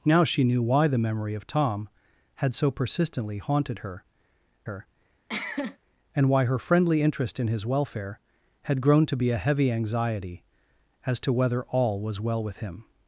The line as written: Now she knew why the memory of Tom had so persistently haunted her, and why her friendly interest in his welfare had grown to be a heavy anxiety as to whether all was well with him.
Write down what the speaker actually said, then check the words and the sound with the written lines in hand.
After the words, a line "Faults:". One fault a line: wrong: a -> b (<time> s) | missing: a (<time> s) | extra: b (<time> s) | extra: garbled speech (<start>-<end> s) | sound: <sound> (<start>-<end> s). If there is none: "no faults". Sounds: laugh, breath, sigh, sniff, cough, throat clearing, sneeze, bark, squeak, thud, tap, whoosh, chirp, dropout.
Now she knew why the memory of Tom had so persistently haunted her her, and why her friendly interest in his welfare had grown to be a heavy anxiety as to whether all was well with him.
Faults:
extra: her (4.6 s)
sound: cough (5.3-5.8 s)